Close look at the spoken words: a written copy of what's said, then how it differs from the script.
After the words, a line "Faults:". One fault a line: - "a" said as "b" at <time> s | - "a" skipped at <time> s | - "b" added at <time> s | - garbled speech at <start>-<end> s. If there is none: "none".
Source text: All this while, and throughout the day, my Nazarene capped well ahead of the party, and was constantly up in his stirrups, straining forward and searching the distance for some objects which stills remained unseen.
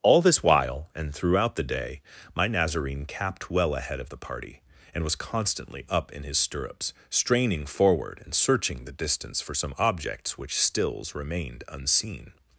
All this while, and throughout the day, my Nazarene capped well ahead of the party, and was constantly up in his stirrups, straining forward and searching the distance for some objects which stills remained unseen.
Faults:
none